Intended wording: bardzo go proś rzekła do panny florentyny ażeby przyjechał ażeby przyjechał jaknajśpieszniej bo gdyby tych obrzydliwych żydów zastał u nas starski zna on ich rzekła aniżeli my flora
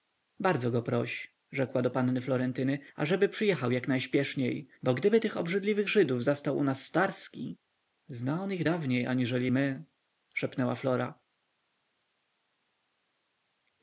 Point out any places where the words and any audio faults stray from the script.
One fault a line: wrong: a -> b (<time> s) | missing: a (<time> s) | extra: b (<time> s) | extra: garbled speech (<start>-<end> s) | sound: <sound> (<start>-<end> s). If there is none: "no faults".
missing: ażeby przyjechał (3.7 s)
wrong: rzekła -> dawniej (8.6 s)
extra: szepnęła (10.3 s)